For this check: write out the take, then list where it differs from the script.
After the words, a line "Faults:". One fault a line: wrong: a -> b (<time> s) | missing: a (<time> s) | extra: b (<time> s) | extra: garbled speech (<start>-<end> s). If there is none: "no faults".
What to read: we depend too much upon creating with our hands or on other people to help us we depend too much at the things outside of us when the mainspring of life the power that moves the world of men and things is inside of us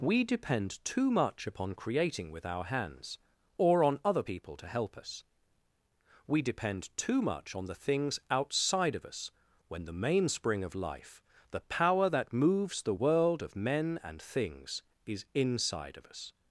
we depend too much upon creating with our hands or on other people to help us we depend too much on the things outside of us when the mainspring of life the power that moves the world of men and things is inside of us
Faults:
wrong: at -> on (7.5 s)